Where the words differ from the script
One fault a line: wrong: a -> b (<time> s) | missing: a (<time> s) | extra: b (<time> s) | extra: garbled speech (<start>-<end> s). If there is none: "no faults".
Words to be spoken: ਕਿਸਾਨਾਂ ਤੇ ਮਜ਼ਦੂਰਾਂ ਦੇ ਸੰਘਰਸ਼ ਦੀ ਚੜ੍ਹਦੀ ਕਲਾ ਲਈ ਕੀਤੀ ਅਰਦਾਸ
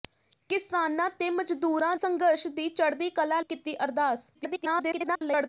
missing: ਦੇ (1.9 s)
missing: ਲਈ (3.4 s)
extra: garbled speech (4.3-5.5 s)